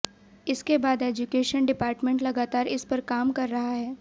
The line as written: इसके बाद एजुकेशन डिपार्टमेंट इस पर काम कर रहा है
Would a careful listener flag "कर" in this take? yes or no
no